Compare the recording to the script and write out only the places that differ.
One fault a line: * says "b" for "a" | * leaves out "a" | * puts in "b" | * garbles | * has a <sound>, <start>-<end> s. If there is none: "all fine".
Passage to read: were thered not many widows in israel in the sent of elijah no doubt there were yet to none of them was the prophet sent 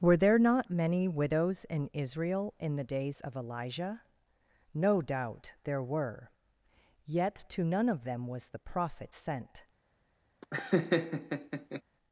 * says "there" for "thered"
* says "days" for "sent"
* has a laugh, 10.4-11.8 s